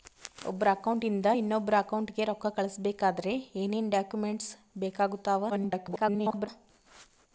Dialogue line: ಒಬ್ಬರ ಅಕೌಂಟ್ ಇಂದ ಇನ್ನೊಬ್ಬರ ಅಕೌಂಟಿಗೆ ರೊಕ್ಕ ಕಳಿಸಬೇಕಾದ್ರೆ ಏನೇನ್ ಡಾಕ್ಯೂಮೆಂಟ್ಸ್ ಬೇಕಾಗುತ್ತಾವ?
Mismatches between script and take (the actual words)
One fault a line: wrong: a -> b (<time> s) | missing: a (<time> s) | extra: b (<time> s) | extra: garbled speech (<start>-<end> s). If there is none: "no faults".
extra: garbled speech (5.5-6.5 s)